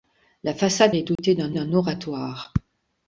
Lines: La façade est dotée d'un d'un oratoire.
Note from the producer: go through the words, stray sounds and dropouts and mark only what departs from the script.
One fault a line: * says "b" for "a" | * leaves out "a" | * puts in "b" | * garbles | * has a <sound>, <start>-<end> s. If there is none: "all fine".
* has a dropout, 1.2-1.2 s